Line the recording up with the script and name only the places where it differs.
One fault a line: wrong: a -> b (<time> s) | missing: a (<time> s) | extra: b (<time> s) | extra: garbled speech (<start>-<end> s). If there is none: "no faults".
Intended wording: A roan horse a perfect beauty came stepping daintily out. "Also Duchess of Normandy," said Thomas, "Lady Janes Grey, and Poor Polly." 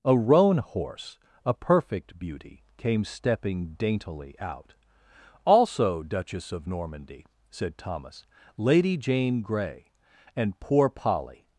wrong: Janes -> Jane (9.0 s)